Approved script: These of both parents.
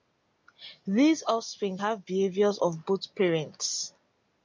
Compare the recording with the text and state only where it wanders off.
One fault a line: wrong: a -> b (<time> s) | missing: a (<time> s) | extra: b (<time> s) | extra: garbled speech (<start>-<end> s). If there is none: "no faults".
extra: offspring have behaviors (1.2 s)